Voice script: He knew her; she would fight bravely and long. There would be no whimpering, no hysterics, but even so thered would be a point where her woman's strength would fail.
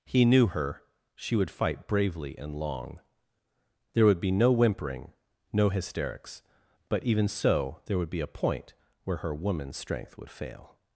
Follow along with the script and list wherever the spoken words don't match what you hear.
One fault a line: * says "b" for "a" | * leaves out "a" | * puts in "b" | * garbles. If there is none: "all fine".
* says "there" for "thered"